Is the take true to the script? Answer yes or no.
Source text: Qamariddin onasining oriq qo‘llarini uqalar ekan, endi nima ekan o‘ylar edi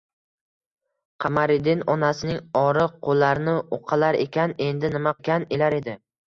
yes